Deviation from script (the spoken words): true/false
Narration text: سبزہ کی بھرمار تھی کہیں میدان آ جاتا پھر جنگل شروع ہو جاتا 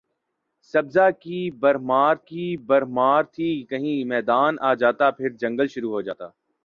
true